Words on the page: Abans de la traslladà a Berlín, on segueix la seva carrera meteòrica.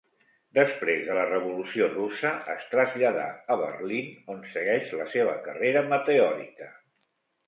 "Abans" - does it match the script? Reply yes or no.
no